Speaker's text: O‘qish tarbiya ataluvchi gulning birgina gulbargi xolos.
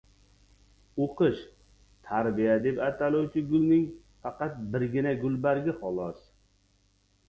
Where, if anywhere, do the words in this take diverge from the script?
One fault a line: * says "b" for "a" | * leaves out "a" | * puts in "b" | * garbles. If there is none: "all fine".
* puts in "deb"
* puts in "faqat"